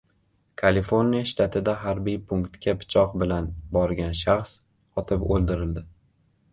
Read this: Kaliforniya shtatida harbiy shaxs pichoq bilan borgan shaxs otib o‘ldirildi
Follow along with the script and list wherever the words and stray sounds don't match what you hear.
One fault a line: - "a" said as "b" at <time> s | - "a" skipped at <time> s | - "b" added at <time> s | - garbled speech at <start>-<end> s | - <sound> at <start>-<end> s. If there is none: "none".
- "shaxs" said as "punktga" at 2.3 s